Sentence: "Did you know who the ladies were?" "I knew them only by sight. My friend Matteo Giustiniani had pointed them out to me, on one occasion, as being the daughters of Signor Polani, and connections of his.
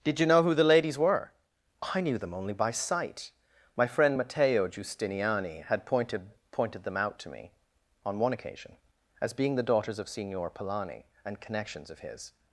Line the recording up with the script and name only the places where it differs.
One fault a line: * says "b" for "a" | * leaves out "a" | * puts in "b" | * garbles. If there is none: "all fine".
* puts in "pointed"